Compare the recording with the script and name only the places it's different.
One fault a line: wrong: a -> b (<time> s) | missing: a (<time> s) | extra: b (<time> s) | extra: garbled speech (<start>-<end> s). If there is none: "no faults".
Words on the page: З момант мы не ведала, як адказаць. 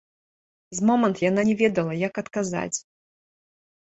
wrong: мы -> яна (1.3 s)